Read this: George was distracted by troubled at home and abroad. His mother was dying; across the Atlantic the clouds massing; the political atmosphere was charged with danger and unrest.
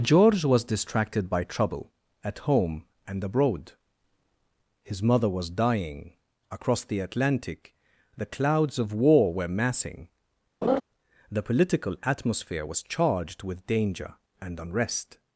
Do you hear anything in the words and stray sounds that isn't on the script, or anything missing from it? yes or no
yes